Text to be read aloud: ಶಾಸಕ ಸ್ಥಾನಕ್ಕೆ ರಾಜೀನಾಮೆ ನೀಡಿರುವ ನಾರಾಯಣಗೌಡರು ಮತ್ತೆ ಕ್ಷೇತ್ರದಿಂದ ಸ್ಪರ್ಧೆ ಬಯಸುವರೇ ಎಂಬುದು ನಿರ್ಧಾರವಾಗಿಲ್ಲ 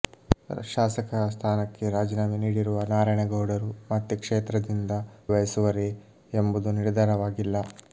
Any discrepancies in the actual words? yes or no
yes